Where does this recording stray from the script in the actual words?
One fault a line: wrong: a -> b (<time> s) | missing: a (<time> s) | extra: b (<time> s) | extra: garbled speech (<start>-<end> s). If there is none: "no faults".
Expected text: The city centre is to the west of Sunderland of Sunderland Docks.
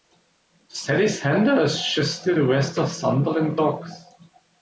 extra: just (1.9 s)
missing: of Sunderland (3.6 s)